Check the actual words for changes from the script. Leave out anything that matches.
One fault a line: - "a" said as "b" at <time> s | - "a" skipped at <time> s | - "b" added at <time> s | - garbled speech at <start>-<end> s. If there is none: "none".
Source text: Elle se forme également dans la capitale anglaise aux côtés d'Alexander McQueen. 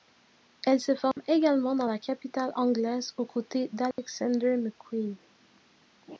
none